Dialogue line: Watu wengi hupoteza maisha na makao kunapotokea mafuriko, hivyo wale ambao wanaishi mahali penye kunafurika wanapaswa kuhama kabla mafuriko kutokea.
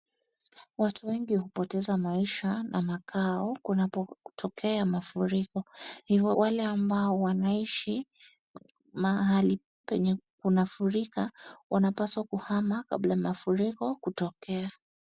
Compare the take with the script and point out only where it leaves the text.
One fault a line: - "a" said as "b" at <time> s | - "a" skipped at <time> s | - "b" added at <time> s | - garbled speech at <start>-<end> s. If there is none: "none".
none